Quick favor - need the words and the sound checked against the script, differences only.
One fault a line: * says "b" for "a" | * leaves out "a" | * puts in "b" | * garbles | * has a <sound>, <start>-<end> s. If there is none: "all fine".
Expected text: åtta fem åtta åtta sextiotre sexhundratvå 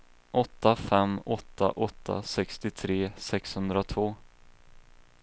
all fine